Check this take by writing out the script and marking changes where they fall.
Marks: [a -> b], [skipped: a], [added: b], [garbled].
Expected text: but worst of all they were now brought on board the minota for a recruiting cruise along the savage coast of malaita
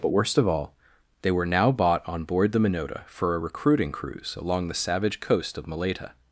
but worst of all they were now [brought -> bought] on board the minota for a recruiting cruise along the savage coast of malaita